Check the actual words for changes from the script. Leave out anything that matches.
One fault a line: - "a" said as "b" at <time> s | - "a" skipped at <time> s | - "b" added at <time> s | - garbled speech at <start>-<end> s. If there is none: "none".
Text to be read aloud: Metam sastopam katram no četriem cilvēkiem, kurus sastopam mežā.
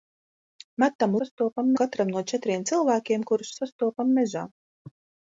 none